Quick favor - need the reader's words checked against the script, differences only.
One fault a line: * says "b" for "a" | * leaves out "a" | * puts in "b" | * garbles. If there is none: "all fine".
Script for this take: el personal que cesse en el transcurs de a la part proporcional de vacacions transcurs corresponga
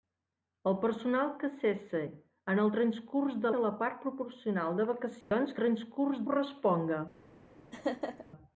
all fine